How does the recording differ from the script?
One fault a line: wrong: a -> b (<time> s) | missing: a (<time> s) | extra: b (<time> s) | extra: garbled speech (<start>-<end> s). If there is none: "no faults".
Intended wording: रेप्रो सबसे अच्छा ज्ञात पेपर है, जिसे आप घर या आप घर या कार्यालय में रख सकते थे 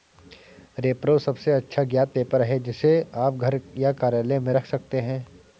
missing: आप घर या (3.9 s)
wrong: थे -> हैं (5.0 s)